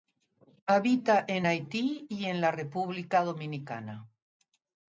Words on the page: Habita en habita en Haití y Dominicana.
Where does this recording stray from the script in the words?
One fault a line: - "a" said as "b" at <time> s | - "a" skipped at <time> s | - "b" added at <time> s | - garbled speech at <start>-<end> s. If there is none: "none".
- "habita" said as "Haití y" at 1.4 s
- "Haití y" said as "la República" at 2.4 s